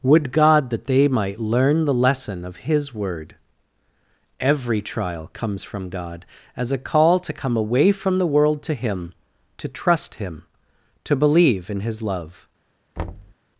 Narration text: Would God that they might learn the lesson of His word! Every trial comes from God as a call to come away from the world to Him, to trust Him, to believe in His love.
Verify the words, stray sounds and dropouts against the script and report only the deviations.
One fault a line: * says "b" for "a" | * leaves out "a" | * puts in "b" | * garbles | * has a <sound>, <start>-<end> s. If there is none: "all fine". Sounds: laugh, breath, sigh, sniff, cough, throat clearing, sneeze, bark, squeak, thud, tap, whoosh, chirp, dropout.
* has a thud, 13.0-13.3 s